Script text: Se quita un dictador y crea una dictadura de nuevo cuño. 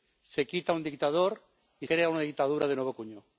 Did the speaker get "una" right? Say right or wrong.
right